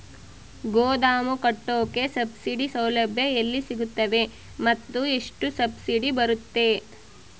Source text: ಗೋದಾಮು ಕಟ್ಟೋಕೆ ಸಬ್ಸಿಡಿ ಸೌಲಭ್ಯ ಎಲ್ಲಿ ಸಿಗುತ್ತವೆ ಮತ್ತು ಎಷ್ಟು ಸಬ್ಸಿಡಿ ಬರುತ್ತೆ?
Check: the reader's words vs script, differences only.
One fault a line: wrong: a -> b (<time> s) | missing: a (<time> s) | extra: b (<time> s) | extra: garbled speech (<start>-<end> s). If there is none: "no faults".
no faults